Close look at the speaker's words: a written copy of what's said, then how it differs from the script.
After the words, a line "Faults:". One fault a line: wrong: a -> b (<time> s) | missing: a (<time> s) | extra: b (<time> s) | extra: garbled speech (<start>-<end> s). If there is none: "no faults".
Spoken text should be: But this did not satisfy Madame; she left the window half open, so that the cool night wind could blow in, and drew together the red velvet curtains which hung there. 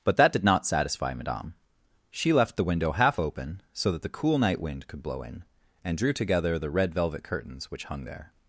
But that did not satisfy Madame; she left the window half open, so that the cool night wind could blow in, and drew together the red velvet curtains which hung there.
Faults:
wrong: this -> that (0.2 s)